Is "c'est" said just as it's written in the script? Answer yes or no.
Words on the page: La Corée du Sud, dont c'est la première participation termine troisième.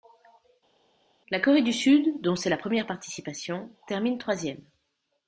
yes